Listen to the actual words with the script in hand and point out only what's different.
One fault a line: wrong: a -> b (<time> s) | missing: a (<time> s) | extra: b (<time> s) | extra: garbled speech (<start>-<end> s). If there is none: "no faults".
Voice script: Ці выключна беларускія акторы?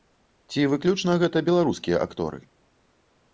extra: гэта (1.2 s)